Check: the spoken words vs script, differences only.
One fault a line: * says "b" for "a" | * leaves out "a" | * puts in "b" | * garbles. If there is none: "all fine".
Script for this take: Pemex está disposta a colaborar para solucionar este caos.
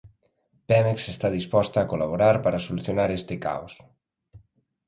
all fine